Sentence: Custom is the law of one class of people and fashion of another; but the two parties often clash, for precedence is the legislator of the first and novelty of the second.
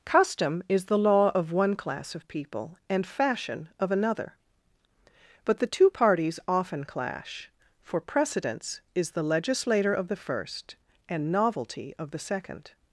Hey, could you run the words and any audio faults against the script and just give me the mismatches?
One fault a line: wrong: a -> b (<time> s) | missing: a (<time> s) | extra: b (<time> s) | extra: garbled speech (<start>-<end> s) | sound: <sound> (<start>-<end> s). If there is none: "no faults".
no faults